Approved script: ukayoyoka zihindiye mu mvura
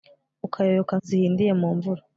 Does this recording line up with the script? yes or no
yes